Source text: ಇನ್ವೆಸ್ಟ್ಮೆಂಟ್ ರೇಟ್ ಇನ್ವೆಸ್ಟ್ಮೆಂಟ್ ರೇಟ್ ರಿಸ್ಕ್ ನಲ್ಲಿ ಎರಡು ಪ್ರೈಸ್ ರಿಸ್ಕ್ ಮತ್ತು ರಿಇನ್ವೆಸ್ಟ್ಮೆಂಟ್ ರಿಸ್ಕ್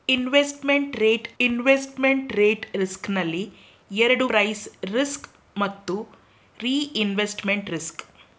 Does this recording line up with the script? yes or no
yes